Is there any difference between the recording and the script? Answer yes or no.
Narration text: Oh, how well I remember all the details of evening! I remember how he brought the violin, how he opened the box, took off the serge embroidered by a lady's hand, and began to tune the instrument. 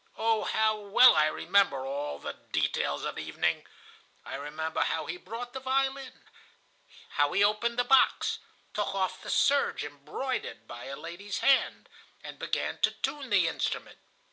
no